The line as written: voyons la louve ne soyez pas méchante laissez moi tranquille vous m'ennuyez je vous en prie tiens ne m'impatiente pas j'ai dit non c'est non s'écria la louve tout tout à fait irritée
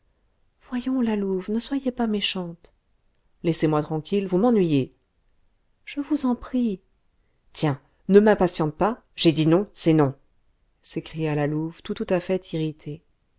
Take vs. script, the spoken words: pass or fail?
pass